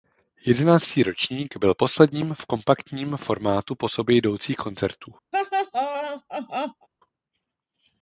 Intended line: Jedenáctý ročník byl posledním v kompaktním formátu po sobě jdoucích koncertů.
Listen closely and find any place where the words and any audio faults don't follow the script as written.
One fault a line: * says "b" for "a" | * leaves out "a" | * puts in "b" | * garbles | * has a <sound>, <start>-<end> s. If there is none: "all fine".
* has a laugh, 5.3-6.9 s